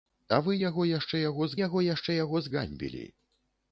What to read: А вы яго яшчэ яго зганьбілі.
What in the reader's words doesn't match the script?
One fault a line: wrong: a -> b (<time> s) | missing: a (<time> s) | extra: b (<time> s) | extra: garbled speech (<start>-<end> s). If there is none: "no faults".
extra: яго яшчэ яго (1.7 s)